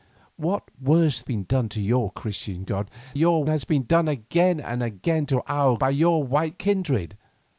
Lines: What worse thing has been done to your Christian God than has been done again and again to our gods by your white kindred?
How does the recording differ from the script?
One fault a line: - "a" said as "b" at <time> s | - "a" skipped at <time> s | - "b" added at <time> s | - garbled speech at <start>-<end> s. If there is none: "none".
- "thing has" skipped at 1.2 s
- "than" said as "your" at 3.1 s
- "gods" skipped at 5.8 s